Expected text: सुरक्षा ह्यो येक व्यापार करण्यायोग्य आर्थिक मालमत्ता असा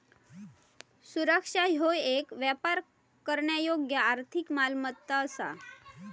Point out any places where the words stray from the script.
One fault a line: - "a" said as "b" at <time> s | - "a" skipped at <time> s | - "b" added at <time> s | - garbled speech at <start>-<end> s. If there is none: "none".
none